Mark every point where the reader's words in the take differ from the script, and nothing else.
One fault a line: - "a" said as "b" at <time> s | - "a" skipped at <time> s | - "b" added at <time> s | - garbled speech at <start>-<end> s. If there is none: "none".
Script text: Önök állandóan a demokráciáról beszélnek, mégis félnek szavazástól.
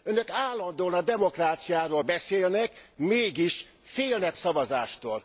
none